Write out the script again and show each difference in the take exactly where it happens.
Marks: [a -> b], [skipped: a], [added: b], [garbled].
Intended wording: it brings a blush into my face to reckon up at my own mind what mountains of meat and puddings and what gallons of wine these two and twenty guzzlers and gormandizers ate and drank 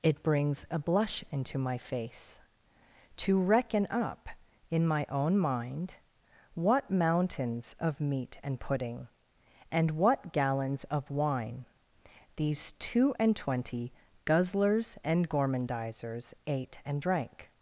it brings a blush into my face to reckon up [at -> in] my own mind what mountains of meat and [puddings -> pudding] and what gallons of wine these two and twenty guzzlers and gormandizers ate and drank